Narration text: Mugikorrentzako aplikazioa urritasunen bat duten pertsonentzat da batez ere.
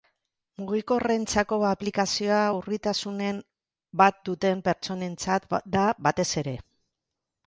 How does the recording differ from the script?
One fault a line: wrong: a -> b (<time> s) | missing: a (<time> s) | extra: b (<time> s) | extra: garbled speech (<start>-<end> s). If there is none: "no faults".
no faults